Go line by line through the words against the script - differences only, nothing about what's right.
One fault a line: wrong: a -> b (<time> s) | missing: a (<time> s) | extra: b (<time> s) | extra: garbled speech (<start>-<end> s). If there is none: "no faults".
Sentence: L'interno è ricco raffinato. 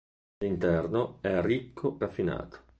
no faults